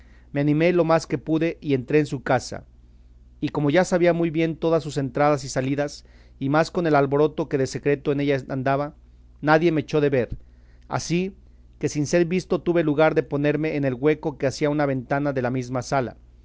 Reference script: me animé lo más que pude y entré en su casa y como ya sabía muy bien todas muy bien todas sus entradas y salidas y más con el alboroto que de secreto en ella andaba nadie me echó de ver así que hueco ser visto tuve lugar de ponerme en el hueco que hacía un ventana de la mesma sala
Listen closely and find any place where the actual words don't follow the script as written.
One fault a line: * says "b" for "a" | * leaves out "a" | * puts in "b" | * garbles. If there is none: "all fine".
* leaves out "muy bien todas"
* says "sin" for "hueco"
* says "una" for "un"